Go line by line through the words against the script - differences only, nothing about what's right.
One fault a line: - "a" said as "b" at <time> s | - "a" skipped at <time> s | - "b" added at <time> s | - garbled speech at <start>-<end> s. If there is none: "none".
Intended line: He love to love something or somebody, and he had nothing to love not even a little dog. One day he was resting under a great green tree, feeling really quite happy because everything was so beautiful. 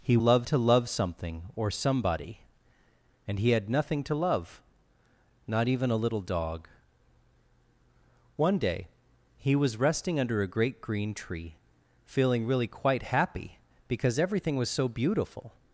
none